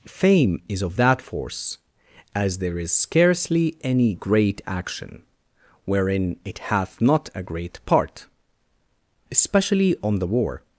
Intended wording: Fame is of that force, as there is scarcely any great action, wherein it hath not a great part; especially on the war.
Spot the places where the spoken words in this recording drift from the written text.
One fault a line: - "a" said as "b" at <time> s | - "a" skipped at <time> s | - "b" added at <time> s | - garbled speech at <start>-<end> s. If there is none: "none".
none